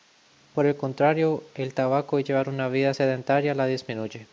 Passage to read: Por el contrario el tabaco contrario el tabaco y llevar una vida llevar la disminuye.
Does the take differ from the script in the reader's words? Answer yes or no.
yes